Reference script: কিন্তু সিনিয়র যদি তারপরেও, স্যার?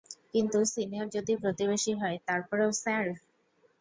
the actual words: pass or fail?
fail